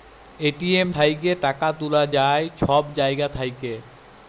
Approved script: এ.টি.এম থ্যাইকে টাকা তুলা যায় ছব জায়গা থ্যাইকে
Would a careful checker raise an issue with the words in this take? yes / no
no